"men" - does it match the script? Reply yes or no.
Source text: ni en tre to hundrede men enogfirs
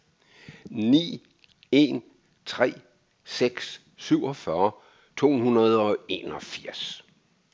no